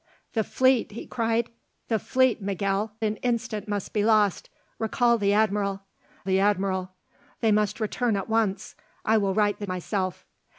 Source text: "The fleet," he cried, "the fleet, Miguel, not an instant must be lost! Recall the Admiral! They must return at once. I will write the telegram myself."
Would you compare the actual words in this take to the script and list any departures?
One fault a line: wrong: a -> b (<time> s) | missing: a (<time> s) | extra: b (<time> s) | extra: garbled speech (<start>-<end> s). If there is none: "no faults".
missing: not (3.0 s)
extra: the Admiral (6.2 s)
missing: telegram (9.7 s)